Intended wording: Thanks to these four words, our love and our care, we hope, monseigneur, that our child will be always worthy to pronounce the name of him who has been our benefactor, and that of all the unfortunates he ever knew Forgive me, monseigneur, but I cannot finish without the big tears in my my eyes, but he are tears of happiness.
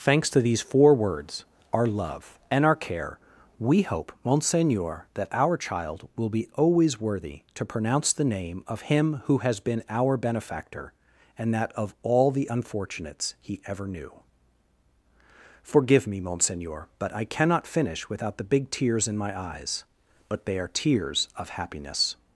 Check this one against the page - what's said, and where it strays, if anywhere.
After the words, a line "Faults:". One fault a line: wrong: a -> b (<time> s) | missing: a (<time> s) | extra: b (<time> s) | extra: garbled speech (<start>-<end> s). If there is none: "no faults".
Thanks to these four words, our love and our care, we hope, monseigneur, that our child will be always worthy to pronounce the name of him who has been our benefactor, and that of all the unfortunates he ever knew Forgive me, monseigneur, but I cannot finish without the big tears in my eyes, but they are tears of happiness.
Faults:
missing: my (19.4 s)
wrong: he -> they (20.5 s)